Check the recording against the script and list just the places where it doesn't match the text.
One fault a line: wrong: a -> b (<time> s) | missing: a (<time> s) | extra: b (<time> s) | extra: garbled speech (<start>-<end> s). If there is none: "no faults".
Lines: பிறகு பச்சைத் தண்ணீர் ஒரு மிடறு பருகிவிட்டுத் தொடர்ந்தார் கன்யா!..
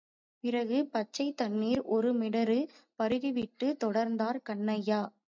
no faults